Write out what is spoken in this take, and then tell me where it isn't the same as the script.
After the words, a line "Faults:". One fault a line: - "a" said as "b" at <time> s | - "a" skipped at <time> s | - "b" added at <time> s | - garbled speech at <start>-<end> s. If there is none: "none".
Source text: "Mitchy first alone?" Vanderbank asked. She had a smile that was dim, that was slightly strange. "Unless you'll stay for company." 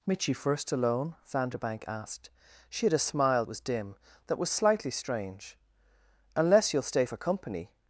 "Mitchy first alone?" Vanderbank asked. She had a smile was dim, that was slightly strange. "Unless you'll stay for company."
Faults:
- "that" skipped at 3.5 s